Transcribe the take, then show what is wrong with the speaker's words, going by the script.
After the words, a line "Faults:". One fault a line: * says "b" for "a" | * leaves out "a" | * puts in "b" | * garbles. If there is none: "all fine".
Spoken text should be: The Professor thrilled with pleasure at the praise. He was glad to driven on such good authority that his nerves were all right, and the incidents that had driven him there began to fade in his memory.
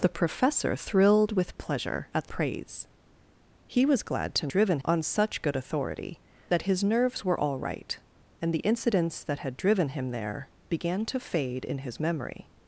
The Professor thrilled with pleasure at the praise. He was glad to driven on such good authority that his nerves were all right, and the incidents that had driven him there began to fade in his memory.
Faults:
all fine